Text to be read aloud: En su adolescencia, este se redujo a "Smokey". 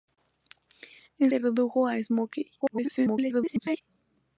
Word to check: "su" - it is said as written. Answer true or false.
false